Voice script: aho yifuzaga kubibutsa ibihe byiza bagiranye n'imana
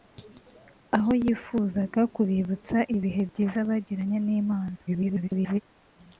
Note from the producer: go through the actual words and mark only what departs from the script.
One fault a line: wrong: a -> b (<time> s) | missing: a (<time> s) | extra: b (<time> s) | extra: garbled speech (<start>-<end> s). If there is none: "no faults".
extra: garbled speech (4.9-5.6 s)